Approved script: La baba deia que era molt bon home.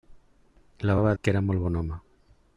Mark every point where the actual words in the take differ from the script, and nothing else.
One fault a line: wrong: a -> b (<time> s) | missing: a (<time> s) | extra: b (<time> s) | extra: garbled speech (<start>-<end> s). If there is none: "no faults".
missing: deia (1.1 s)